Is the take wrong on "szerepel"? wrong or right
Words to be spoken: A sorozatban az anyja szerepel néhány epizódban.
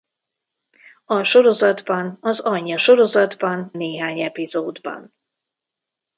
wrong